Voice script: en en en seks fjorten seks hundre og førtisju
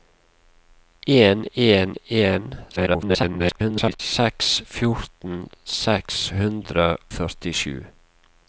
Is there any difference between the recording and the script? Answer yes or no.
yes